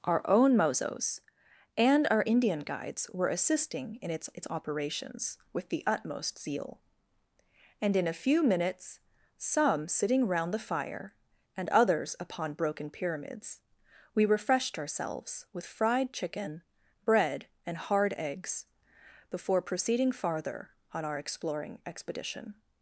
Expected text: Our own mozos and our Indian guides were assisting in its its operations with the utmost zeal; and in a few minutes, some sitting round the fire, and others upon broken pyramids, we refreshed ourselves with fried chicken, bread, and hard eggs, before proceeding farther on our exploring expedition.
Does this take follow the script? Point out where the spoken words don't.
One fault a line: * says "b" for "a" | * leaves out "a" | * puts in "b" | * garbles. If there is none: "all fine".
all fine